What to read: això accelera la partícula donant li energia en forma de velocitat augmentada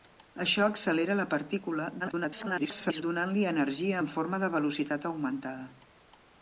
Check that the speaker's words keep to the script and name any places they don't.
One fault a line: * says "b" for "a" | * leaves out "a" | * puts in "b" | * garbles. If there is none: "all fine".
* garbles